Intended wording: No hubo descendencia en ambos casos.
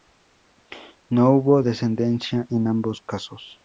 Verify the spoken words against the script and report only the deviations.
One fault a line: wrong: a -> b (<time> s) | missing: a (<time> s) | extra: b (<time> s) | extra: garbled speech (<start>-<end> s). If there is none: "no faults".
no faults